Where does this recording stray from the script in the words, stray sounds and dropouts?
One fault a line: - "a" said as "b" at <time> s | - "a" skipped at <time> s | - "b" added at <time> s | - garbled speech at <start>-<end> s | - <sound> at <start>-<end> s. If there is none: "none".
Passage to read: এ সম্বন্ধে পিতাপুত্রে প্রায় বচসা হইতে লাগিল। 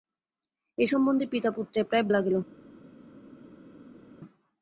- "বচসা হইতে" skipped at 2.0 s